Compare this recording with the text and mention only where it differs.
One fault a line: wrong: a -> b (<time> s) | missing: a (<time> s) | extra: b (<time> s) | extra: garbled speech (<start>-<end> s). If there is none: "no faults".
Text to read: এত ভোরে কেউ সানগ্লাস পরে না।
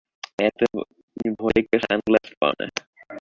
no faults